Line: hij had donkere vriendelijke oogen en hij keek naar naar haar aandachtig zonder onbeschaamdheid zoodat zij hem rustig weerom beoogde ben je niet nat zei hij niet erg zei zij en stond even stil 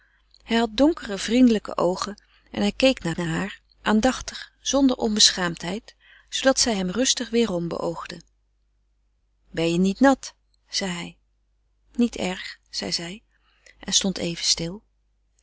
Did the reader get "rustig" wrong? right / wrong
right